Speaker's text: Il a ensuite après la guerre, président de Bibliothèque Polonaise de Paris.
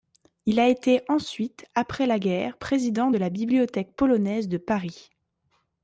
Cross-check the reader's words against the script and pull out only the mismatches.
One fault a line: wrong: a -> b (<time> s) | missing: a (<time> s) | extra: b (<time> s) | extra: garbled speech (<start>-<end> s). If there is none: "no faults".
extra: été (0.7 s)
extra: la (3.2 s)